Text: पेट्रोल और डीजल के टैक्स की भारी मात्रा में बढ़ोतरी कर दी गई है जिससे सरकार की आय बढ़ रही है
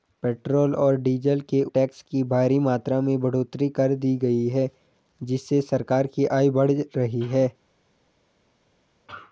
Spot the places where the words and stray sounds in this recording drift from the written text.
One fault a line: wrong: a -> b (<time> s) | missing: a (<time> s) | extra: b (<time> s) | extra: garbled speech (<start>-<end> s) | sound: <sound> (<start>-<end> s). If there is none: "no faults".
no faults